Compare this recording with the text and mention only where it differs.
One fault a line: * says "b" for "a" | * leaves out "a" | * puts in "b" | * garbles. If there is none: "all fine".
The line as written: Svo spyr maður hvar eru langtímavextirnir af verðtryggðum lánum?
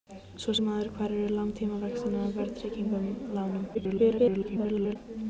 * leaves out "spyr"
* garbles